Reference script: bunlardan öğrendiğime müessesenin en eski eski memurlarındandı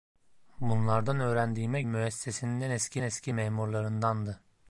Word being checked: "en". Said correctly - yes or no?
yes